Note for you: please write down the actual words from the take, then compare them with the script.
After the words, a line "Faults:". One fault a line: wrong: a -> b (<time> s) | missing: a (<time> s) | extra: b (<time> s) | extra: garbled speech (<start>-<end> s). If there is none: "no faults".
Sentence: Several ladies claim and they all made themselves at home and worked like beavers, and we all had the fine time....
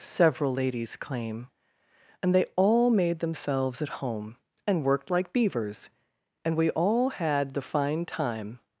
Several ladies claim and they all made themselves at home and worked like beavers, and we all had the fine time....
Faults:
no faults